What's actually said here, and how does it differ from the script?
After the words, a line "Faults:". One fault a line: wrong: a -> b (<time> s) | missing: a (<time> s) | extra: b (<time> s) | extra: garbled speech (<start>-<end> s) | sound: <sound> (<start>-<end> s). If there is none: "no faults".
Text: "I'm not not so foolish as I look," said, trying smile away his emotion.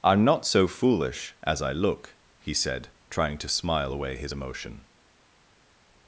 "I'm not so foolish as I look," he said, trying to smile away his emotion.
Faults:
missing: not (0.5 s)
extra: he (2.4 s)
extra: to (3.4 s)